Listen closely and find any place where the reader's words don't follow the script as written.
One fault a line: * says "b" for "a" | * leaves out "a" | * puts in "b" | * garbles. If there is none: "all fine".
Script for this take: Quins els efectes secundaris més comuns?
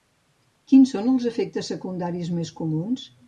* puts in "són"